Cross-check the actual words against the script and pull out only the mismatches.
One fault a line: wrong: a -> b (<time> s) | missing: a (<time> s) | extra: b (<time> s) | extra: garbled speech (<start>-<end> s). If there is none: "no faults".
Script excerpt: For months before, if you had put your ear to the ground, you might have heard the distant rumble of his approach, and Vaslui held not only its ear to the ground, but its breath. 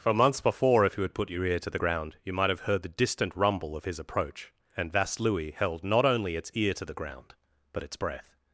no faults